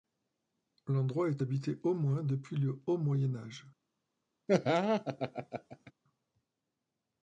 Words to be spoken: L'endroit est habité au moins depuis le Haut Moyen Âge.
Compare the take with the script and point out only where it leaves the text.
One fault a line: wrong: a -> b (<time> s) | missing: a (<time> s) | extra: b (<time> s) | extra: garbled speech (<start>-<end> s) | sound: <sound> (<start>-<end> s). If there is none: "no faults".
sound: laugh (4.5-5.9 s)